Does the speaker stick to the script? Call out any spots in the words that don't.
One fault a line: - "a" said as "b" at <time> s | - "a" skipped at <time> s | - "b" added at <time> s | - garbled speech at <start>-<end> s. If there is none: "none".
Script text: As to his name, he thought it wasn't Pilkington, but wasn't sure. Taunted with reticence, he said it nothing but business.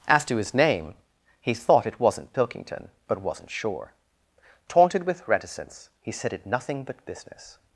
none